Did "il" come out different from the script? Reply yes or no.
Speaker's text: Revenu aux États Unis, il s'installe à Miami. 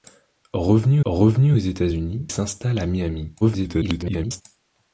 yes